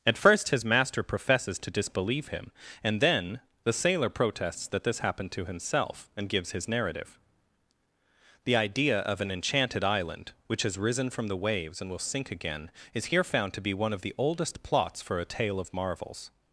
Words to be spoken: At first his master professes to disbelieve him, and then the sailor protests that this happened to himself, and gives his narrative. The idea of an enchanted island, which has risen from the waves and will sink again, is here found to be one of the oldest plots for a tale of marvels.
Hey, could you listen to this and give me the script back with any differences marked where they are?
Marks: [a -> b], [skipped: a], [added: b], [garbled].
At first his master professes to disbelieve him, and then the sailor protests that this happened to himself, and gives his narrative. The idea of an enchanted island, which has risen from the waves and will sink again, is here found to be one of the oldest plots for a tale of marvels.